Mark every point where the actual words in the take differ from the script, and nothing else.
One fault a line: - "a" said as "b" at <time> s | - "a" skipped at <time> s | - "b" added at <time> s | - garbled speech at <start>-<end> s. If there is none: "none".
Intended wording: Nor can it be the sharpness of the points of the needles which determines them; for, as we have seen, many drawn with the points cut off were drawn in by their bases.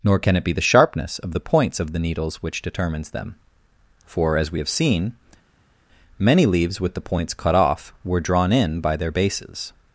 - "drawn" said as "leaves" at 6.5 s